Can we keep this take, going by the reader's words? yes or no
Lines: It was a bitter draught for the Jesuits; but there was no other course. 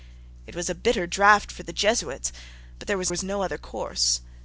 no